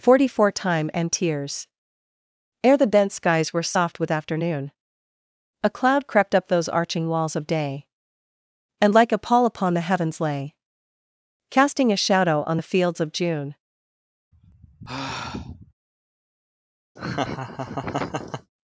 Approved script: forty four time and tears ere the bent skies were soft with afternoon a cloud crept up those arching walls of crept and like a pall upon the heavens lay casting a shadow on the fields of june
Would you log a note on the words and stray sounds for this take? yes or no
yes